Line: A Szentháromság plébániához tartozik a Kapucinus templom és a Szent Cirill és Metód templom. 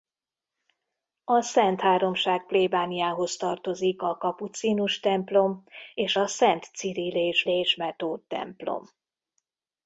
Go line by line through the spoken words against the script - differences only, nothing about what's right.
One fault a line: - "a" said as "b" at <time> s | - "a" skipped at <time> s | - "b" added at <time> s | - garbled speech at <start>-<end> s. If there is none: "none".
- "és" added at 7.5 s